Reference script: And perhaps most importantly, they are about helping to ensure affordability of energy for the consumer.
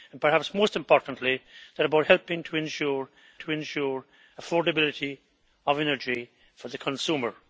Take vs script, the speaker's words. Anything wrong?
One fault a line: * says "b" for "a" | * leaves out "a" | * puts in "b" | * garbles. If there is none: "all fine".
* puts in "to ensure"